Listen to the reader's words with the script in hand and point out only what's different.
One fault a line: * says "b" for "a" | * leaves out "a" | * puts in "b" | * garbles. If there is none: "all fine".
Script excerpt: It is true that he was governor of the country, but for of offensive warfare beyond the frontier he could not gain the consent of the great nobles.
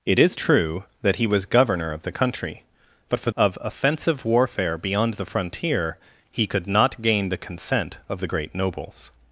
all fine